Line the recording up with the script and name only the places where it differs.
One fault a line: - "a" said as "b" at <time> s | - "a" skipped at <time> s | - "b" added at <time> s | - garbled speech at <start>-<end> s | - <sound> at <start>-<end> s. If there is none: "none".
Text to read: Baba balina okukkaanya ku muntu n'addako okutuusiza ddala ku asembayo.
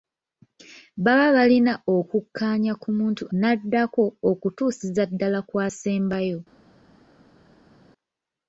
none